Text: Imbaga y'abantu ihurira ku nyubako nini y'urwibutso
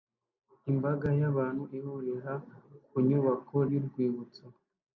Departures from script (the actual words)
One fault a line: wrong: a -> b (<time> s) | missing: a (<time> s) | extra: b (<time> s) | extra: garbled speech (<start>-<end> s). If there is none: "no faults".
missing: nini (3.6 s)